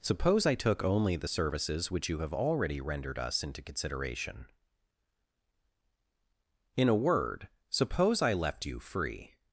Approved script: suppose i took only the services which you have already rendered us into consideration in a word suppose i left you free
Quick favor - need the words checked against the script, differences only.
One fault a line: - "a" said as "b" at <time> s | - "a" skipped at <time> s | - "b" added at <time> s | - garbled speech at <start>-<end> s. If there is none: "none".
none